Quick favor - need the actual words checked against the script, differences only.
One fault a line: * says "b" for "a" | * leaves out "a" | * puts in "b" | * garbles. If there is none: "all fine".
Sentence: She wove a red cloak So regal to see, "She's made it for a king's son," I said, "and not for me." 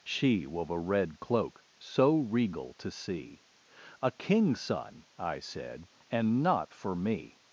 * leaves out "She's made it for"